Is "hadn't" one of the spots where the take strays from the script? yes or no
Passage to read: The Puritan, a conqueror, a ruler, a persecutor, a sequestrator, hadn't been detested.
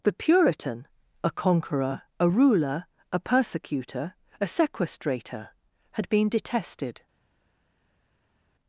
yes